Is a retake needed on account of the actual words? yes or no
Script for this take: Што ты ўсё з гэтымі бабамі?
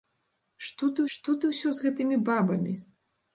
yes